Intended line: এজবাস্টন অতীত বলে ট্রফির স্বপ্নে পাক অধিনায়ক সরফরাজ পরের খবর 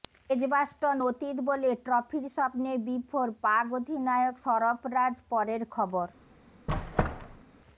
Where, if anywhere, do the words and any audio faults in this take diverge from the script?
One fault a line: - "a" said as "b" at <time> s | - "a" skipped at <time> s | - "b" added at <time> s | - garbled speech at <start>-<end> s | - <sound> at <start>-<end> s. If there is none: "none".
- "বিভোর" added at 2.9 s
- squeak at 6.7-7.4 s